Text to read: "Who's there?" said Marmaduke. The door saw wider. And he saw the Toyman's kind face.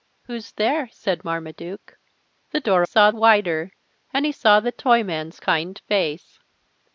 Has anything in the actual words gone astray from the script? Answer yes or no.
no